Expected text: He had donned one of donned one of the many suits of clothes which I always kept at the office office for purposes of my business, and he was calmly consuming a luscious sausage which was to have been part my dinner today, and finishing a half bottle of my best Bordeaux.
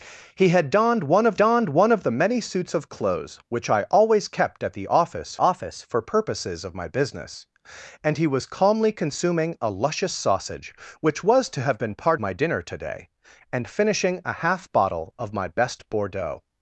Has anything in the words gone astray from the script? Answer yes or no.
no